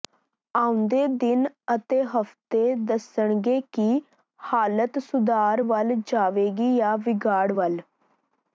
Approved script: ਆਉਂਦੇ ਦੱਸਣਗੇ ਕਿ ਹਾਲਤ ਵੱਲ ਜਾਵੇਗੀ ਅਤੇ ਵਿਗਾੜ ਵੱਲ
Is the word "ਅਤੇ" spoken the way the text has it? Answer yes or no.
no